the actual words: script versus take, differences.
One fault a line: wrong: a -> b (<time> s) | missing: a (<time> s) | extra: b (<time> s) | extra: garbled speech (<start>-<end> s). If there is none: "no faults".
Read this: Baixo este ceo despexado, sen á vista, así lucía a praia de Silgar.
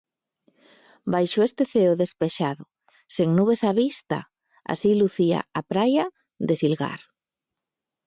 extra: nubes (3.4 s)